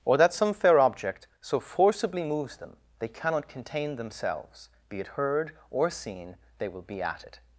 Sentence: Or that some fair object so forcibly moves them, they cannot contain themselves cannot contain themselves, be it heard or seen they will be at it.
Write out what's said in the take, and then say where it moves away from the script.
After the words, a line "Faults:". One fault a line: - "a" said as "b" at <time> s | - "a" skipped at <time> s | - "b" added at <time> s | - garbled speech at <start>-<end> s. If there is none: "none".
Or that some fair object so forcibly moves them, they cannot contain themselves, be it heard or seen they will be at it.
Faults:
- "cannot contain themselves" skipped at 4.7 s